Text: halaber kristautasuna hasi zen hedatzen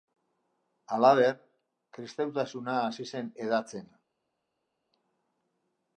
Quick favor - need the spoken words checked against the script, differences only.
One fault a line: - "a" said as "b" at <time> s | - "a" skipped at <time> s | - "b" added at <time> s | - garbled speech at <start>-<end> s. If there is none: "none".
none